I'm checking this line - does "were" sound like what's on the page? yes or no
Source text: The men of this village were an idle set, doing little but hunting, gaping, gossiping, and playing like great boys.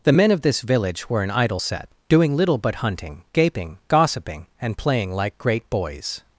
yes